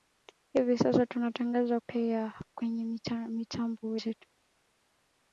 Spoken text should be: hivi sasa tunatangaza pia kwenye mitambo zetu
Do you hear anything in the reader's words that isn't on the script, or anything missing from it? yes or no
no